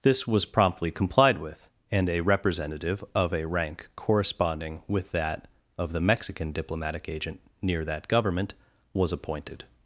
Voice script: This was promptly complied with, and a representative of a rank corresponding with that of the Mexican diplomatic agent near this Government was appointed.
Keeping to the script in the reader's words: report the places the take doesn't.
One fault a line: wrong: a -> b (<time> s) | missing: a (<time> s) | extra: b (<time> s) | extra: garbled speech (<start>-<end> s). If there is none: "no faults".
wrong: this -> that (7.8 s)